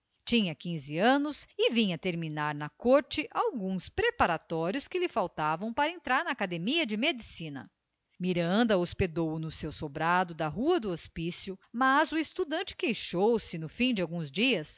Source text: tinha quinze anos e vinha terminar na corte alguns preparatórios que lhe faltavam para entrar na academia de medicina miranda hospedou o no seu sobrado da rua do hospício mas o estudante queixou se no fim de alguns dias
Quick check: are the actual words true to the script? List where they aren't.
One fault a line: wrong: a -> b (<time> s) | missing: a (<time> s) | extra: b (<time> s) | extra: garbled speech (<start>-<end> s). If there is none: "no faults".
no faults